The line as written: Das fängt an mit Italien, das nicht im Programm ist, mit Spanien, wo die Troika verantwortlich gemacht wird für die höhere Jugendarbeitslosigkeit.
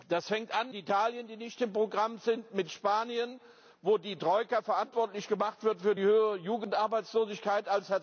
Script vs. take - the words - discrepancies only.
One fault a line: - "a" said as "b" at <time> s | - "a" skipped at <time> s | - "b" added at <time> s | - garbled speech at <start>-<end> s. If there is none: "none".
- "mit" skipped at 0.7 s